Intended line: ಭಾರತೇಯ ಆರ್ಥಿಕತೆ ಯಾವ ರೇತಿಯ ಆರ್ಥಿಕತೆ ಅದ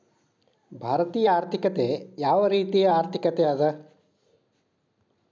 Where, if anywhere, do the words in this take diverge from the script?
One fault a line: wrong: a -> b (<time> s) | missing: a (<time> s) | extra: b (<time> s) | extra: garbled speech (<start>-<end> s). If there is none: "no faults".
no faults